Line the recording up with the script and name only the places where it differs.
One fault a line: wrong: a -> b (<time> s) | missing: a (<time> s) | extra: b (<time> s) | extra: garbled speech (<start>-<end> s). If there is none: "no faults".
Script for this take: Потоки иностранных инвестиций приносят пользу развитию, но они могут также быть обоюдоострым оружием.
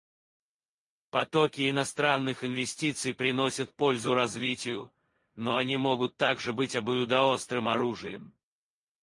no faults